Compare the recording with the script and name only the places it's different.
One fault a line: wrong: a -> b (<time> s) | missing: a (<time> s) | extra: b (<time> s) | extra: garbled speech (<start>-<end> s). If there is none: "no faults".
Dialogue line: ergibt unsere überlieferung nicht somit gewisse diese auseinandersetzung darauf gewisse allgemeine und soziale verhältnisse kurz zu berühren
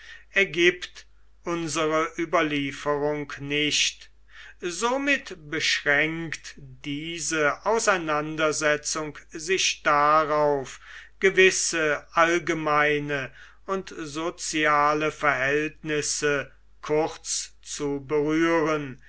wrong: gewisse -> beschränkt (5.5 s)
extra: sich (9.3 s)